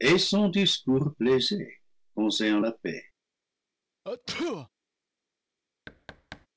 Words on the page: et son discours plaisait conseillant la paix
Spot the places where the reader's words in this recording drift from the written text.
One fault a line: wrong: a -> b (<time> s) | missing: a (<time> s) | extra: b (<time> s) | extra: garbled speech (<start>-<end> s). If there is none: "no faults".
no faults